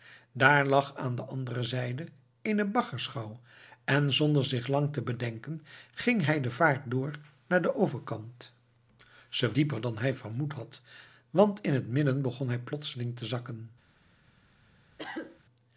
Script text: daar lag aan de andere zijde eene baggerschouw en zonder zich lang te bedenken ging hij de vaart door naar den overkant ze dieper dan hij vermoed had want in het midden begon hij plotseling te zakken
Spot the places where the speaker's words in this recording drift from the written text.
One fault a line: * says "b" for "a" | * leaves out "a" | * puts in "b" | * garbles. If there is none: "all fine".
all fine